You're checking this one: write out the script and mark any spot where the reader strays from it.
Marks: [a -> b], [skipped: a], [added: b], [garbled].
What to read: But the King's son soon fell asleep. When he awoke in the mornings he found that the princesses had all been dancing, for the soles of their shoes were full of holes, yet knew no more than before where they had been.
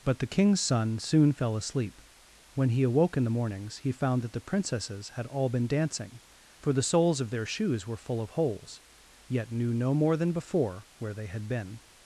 But the King's son soon fell asleep. When he awoke in the mornings he found that the princesses had all been dancing, for the soles of their shoes were full of holes, yet knew no more than before where they had been.